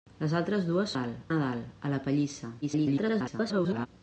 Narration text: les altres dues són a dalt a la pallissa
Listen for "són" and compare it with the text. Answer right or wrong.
wrong